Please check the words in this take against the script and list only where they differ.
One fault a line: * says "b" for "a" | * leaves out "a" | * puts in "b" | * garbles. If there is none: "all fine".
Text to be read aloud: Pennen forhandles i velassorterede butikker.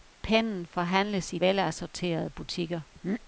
all fine